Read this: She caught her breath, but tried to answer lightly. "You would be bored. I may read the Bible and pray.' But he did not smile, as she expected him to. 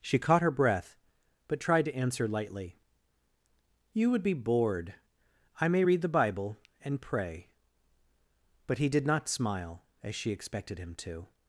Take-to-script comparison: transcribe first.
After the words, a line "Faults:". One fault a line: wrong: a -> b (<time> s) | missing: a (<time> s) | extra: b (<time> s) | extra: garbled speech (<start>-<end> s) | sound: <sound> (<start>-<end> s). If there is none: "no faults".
She caught her breath, but tried to answer lightly. "You would be bored. I may read the Bible and pray.' But he did not smile, as she expected him to.
Faults:
no faults